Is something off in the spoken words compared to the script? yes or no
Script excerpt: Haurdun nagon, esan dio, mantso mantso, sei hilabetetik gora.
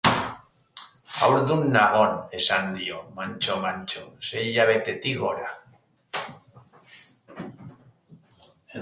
no